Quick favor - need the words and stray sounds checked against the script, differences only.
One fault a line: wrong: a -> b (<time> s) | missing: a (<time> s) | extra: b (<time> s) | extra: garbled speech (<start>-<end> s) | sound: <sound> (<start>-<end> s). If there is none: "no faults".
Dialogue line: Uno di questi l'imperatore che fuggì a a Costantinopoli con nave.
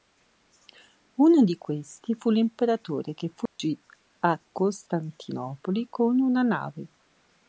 extra: fu (2.1 s)
sound: dropout (3.5-3.6 s)
missing: a (4.4 s)
extra: una (6.2 s)